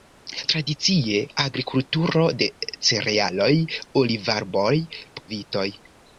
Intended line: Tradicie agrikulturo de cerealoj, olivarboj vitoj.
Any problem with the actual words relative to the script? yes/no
no